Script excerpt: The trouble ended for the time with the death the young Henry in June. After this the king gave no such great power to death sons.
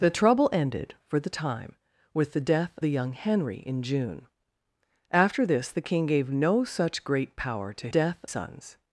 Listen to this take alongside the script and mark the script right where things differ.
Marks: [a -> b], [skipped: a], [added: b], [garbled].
The trouble ended for the time with the death the young Henry in June. After this the king gave no such great power to death sons.